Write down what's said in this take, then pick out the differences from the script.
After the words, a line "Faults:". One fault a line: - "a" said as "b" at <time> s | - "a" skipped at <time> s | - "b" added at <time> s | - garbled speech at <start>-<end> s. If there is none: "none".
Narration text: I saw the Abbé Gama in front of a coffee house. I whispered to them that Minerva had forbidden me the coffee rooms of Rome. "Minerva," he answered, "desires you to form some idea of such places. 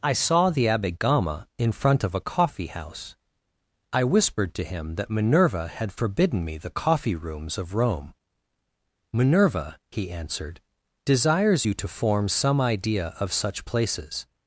I saw the Abbé Gama in front of a coffee house. I whispered to him that Minerva had forbidden me the coffee rooms of Rome. "Minerva," he answered, "desires you to form some idea of such places.
Faults:
- "them" said as "him" at 4.6 s